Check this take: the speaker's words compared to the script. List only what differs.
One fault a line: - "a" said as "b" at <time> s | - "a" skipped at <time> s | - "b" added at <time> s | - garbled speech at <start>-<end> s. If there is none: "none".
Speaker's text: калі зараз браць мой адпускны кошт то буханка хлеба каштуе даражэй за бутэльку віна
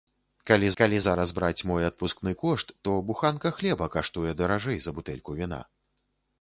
- "калі" added at 0.8 s